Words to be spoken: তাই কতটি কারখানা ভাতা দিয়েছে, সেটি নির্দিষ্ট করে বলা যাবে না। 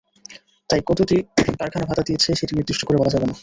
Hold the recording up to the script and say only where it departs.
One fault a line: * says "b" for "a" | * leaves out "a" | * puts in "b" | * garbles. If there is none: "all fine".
all fine